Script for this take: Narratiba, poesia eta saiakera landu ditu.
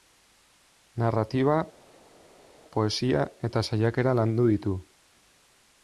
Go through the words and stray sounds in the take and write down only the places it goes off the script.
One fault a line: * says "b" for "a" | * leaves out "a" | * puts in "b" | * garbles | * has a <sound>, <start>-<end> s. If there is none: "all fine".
all fine